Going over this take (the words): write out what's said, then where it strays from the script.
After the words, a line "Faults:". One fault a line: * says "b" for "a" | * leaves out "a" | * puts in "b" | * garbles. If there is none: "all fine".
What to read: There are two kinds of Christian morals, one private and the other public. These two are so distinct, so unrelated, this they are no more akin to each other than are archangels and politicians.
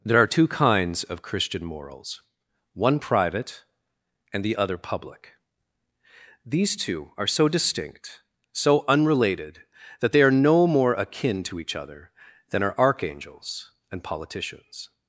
There are two kinds of Christian morals, one private and the other public. These two are so distinct, so unrelated, that they are no more akin to each other than are archangels and politicians.
Faults:
* says "that" for "this"